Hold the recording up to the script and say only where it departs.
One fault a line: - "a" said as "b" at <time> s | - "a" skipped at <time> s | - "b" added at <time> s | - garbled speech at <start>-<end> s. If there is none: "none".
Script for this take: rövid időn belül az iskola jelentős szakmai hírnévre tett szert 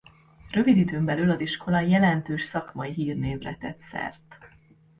none